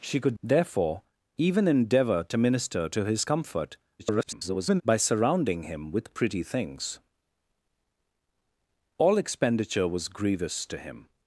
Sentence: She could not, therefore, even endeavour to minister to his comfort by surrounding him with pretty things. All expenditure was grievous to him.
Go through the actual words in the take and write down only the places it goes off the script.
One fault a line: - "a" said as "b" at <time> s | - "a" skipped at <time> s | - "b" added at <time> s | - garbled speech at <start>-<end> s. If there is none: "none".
- "not" skipped at 0.4 s
- garbled speech at 4.0-4.8 s